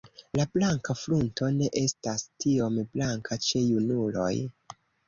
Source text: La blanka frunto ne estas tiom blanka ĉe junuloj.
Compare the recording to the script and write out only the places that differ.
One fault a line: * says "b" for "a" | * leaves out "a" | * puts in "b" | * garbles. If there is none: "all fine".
all fine